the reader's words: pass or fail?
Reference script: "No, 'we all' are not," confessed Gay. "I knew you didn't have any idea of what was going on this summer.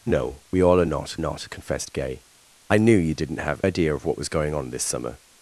fail